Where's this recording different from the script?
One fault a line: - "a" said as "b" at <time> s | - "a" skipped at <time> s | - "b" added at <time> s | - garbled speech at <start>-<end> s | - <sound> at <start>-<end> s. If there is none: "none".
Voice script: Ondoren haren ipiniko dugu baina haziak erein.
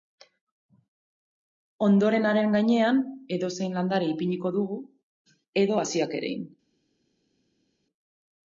- "gainean edozein landare" added at 2.6 s
- "baina" said as "edo" at 5.7 s